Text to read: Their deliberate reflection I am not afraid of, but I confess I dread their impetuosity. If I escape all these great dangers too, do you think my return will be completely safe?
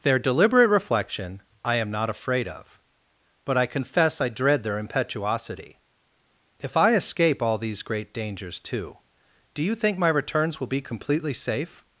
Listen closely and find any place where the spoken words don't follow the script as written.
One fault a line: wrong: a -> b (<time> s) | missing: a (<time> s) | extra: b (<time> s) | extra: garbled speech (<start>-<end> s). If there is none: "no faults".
wrong: return -> returns (10.1 s)